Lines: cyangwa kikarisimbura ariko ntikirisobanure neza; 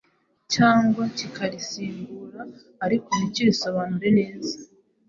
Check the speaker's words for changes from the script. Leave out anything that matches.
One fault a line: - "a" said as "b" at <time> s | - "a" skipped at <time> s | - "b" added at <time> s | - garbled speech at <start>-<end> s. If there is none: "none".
none